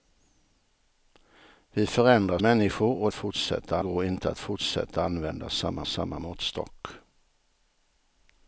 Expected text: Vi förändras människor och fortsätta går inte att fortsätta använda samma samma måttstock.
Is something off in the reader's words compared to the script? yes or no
no